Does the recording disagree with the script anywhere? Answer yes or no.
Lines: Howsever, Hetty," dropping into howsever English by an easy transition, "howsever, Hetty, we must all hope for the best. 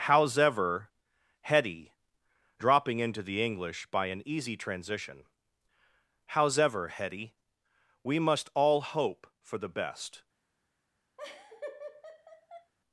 yes